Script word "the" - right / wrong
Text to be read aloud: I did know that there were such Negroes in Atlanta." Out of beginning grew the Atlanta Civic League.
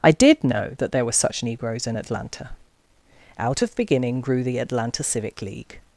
right